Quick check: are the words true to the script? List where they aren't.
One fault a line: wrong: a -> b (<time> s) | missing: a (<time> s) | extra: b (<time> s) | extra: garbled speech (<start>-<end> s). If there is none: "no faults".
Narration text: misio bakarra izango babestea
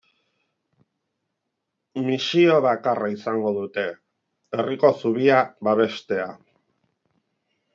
extra: dute herriko zubia (3.6 s)